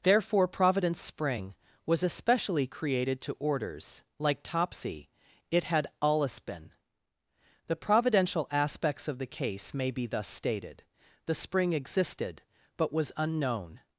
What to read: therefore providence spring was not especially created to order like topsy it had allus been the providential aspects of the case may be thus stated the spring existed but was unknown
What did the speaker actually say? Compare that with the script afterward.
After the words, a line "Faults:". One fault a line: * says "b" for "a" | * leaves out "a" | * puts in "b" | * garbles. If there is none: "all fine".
therefore providence spring was especially created to orders like topsy it had allus been the providential aspects of the case may be thus stated the spring existed but was unknown
Faults:
* leaves out "not"
* says "orders" for "order"